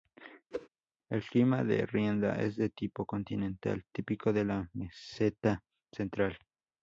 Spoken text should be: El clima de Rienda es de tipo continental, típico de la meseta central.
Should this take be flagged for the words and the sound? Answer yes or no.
yes